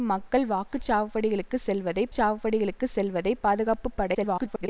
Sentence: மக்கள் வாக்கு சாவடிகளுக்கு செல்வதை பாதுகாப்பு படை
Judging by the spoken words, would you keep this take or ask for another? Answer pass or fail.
fail